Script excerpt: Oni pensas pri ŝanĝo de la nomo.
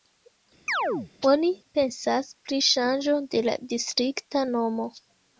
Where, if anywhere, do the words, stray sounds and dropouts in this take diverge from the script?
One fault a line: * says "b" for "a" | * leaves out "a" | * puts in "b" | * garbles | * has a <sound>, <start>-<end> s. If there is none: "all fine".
* has a chirp, 0.7-1.1 s
* puts in "distrikta"